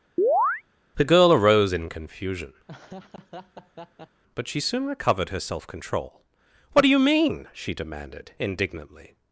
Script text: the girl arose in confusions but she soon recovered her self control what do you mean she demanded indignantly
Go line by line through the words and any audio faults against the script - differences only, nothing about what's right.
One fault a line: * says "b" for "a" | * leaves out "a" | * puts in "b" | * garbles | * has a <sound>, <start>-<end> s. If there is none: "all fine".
* has a chirp, 0.2-0.6 s
* says "confusion" for "confusions"
* has a laugh, 2.7-4.2 s